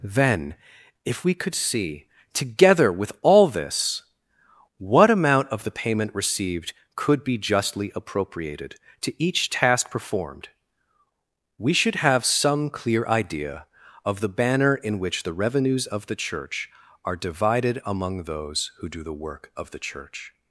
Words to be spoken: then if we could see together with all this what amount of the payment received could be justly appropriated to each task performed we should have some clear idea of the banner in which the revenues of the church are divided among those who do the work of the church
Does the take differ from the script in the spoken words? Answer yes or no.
no